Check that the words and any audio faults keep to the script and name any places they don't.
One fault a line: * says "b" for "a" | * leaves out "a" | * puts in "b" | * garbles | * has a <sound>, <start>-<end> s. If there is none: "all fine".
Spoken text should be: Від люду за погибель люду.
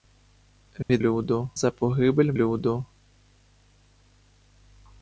* has a dropout, 0.8-0.9 s